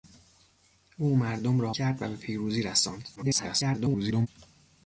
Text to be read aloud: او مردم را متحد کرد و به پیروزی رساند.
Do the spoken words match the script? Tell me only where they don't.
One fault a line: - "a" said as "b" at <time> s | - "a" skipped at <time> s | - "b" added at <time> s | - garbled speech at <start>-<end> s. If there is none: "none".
- "متحد" skipped at 1.8 s
- garbled speech at 3.2-4.3 s